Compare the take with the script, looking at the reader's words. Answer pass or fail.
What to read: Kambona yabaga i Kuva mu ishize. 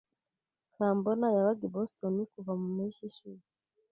fail